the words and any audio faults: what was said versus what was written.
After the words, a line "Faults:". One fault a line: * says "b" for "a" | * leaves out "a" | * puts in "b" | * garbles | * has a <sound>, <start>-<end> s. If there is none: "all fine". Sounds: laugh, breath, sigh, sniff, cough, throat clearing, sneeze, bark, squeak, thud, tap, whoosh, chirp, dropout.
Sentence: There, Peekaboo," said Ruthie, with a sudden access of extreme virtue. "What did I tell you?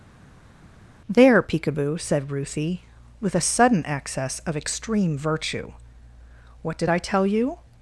There, Peekaboo," said Ruthie, with a sudden access of extreme virtue. "What did I tell you?
Faults:
all fine